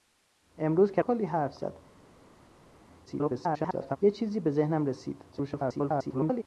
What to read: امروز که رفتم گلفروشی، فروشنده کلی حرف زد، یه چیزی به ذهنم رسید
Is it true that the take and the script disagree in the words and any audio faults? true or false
true